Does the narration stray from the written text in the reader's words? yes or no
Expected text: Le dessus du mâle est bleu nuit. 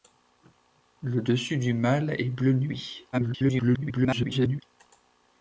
yes